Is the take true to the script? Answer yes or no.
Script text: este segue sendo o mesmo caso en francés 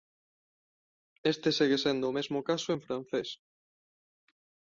yes